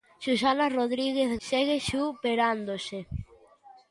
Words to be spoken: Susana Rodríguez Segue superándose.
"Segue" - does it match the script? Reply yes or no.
yes